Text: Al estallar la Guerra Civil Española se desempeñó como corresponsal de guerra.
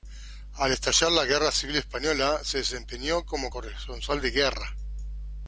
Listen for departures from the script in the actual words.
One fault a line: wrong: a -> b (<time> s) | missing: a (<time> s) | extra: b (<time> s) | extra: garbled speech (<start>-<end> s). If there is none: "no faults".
no faults